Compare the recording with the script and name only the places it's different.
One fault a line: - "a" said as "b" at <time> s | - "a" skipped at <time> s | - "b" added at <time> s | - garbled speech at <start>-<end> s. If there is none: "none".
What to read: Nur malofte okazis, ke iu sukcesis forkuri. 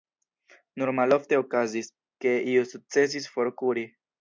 none